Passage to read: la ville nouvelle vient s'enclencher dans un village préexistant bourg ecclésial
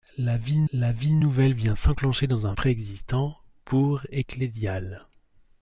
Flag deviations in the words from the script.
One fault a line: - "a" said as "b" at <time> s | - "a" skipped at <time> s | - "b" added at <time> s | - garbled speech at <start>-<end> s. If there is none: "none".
- "la ville" added at 0.7 s
- "village" skipped at 2.5 s